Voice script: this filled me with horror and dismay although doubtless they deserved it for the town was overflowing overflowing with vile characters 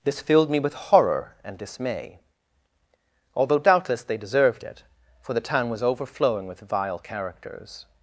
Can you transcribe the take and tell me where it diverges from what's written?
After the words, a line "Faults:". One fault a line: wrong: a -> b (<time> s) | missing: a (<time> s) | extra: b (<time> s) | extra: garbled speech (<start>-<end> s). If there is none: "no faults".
this filled me with horror and dismay although doubtless they deserved it for the town was overflowing with vile characters
Faults:
missing: overflowing (6.5 s)